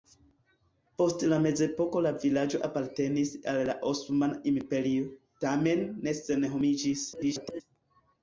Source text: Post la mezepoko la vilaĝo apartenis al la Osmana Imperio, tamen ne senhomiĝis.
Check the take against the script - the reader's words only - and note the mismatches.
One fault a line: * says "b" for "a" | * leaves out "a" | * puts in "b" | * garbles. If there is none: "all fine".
* garbles